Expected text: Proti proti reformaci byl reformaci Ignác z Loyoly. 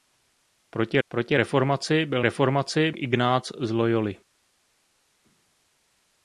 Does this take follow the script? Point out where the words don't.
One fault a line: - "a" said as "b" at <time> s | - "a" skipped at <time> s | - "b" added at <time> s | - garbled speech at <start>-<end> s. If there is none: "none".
none